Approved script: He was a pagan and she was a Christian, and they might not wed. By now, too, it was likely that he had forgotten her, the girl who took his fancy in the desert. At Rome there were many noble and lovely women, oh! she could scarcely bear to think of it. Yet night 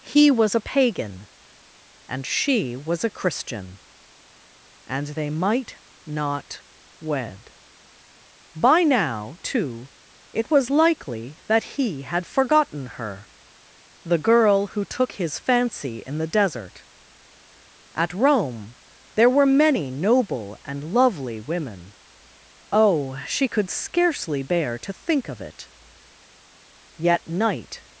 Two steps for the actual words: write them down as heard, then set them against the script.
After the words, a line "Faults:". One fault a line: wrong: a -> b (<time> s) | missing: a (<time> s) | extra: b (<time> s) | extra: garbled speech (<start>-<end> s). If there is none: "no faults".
He was a pagan and she was a Christian, and they might not wed. By now, too, it was likely that he had forgotten her, the girl who took his fancy in the desert. At Rome there were many noble and lovely women, oh! she could scarcely bear to think of it. Yet night
Faults:
no faults